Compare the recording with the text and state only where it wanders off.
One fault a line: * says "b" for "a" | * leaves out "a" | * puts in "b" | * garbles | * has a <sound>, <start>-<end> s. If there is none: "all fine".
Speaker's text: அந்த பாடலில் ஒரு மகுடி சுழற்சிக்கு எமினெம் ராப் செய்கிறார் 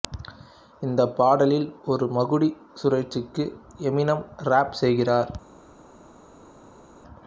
* says "இந்த" for "அந்த"